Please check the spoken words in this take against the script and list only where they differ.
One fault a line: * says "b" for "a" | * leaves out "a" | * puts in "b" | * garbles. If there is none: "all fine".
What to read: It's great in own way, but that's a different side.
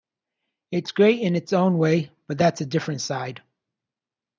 * puts in "its"